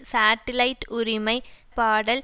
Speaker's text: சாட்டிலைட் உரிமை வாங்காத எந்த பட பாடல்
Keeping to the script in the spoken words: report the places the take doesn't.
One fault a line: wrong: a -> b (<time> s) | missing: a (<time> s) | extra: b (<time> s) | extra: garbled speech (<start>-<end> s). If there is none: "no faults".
missing: வாங்காத எந்த பட (1.4 s)